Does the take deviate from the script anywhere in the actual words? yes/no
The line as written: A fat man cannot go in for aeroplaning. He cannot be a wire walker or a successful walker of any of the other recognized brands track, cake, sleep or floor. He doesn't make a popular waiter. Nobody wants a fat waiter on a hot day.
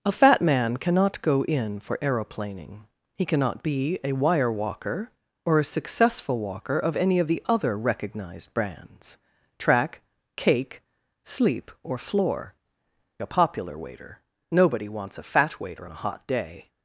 yes